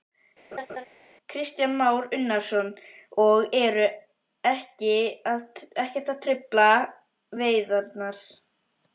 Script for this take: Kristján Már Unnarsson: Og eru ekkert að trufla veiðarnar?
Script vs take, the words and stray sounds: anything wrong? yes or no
yes